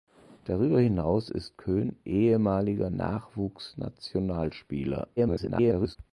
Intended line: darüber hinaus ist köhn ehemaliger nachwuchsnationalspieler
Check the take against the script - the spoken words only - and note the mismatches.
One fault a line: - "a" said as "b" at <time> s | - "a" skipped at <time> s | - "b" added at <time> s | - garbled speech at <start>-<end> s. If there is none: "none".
- garbled speech at 5.2-6.0 s